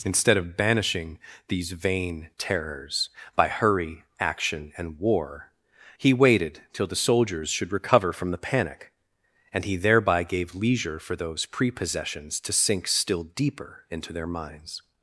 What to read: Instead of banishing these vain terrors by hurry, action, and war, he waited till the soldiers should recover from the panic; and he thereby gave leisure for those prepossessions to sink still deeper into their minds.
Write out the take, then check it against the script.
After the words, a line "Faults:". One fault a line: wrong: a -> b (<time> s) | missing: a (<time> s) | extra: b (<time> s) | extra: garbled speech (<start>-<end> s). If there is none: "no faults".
Instead of banishing these vain terrors by hurry, action, and war, he waited till the soldiers should recover from the panic; and he thereby gave leisure for those prepossessions to sink still deeper into their minds.
Faults:
no faults